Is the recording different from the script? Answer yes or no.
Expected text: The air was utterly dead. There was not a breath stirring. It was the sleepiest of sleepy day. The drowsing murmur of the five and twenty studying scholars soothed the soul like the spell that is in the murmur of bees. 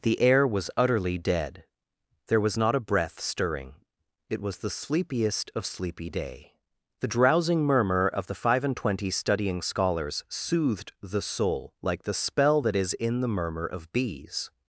no